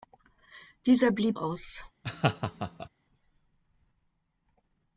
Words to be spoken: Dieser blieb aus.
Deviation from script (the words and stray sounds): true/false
true